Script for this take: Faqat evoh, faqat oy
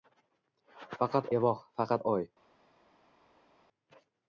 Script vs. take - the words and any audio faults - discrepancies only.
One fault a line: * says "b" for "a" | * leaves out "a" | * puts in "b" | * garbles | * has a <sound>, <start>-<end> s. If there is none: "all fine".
all fine